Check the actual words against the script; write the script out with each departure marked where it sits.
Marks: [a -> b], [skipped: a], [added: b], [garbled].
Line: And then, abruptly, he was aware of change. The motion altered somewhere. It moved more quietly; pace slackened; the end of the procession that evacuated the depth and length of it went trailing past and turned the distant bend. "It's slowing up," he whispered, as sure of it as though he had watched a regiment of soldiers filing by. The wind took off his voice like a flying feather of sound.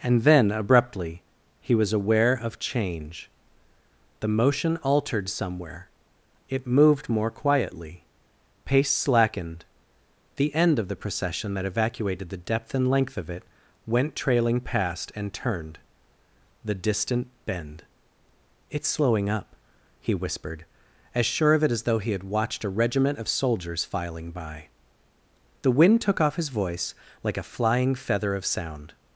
And then, abruptly, he was aware of change. The motion altered somewhere. It moved more quietly; pace slackened; the end of the procession that evacuated the depth and length of it went trailing past and turned the distant bend. "It's slowing up," he whispered, as sure of it as though he had watched a regiment of soldiers filing by. The wind took off his voice like a flying feather of sound.